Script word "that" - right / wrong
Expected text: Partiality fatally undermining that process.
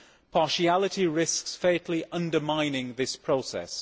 wrong